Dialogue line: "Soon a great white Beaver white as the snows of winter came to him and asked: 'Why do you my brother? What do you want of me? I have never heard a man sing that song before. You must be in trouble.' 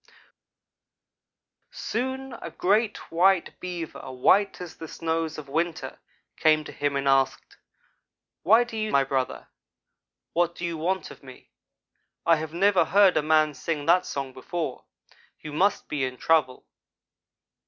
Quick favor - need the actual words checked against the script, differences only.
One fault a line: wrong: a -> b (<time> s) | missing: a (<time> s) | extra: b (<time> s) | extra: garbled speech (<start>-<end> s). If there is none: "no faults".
no faults